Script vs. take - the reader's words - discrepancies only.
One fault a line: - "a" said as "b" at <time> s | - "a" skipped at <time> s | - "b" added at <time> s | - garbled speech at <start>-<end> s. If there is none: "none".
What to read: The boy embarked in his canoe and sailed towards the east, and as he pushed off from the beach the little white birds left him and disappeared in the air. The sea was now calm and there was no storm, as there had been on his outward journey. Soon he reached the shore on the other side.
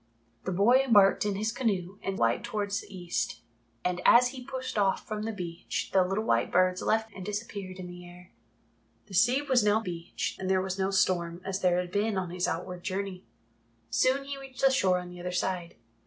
- "sailed" said as "white" at 2.2 s
- "him" skipped at 7.1 s
- "calm" said as "beach" at 9.8 s